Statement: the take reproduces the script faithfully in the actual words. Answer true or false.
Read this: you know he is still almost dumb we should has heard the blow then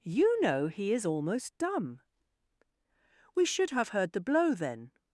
false